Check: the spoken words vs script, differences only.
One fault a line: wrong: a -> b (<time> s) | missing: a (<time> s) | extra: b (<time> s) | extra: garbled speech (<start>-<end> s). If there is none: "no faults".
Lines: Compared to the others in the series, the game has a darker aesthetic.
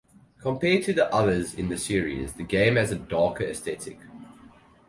no faults